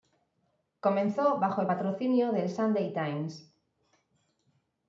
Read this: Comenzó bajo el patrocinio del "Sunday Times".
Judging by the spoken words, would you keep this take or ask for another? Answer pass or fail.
pass